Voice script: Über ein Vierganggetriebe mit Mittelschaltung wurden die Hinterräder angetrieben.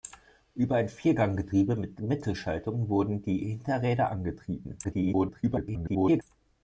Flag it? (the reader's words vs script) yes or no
yes